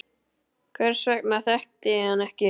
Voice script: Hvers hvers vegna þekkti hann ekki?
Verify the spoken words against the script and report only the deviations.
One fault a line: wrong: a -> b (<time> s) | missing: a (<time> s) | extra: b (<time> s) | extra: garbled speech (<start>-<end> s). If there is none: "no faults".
missing: hvers (1.0 s)
extra: ég (2.0 s)